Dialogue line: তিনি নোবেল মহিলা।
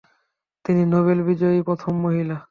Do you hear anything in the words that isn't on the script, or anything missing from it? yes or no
yes